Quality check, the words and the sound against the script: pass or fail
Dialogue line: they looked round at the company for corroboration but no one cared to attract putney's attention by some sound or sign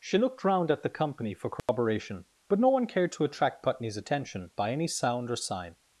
fail